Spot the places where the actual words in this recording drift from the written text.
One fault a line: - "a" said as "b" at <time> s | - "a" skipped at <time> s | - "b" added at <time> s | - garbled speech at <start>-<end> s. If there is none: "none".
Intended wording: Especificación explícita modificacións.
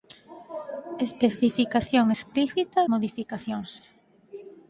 none